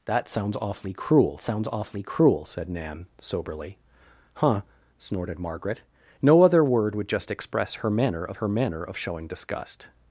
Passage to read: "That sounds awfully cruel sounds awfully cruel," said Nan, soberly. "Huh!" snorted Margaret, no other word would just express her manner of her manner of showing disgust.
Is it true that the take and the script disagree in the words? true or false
false